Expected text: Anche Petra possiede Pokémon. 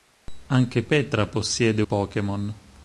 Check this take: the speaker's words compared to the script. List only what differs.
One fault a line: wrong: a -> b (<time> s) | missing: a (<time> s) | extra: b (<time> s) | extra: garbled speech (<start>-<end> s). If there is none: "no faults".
no faults